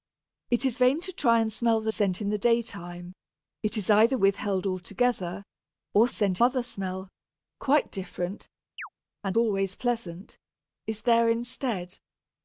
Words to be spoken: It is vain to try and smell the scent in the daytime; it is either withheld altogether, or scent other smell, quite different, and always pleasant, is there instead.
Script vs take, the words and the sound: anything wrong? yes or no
yes